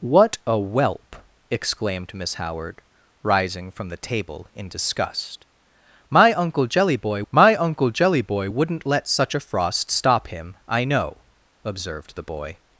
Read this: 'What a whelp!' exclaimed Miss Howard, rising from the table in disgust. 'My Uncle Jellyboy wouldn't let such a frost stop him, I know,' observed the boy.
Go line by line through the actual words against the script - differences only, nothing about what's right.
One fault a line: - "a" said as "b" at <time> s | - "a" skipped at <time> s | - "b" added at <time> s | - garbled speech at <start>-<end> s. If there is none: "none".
- "my Uncle Jellyboy" added at 7.3 s